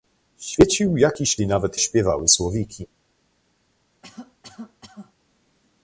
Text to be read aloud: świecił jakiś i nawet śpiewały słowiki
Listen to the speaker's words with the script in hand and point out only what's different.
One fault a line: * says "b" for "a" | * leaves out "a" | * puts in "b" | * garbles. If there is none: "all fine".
all fine